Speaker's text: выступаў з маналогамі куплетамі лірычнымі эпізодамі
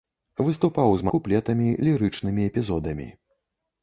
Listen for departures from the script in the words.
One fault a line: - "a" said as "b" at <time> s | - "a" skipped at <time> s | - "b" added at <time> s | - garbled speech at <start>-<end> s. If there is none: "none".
- "маналогамі" skipped at 1.1 s